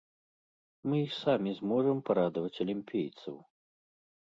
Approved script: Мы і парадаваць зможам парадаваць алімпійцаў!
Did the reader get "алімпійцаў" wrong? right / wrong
right